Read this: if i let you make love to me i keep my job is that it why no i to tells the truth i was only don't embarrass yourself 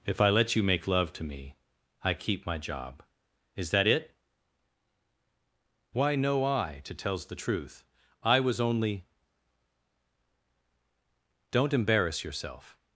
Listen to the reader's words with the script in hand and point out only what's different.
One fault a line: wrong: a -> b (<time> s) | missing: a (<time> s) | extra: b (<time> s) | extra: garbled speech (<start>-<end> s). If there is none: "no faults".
no faults